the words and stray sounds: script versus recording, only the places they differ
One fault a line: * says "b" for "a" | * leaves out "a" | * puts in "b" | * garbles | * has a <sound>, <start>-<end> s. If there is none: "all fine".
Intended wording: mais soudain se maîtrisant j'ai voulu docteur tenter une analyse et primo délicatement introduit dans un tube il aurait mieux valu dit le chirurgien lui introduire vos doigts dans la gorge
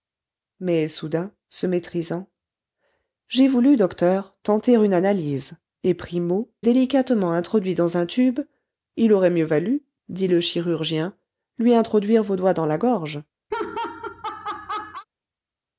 * has a laugh, 13.5-15.1 s